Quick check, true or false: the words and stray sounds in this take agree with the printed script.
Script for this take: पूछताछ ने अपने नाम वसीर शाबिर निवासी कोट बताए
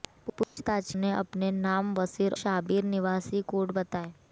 false